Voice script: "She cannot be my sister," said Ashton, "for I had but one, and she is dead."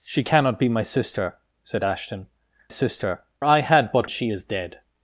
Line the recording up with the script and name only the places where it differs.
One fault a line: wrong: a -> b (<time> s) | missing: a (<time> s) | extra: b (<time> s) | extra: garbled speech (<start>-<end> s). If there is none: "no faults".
wrong: for -> sister (2.7 s)
missing: one and (4.1 s)